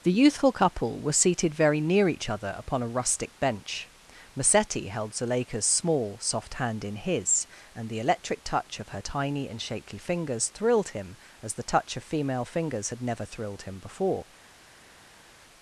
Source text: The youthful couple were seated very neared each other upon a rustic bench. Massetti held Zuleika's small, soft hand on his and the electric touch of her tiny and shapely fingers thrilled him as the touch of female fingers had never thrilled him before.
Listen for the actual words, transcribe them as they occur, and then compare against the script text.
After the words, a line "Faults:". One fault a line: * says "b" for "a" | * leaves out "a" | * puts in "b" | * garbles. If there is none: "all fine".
The youthful couple were seated very near each other upon a rustic bench. Massetti held Zuleika's small, soft hand in his and the electric touch of her tiny and shapely fingers thrilled him as the touch of female fingers had never thrilled him before.
Faults:
* says "near" for "neared"
* says "in" for "on"